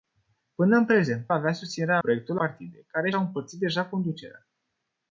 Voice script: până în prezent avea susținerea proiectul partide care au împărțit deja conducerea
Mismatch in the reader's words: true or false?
false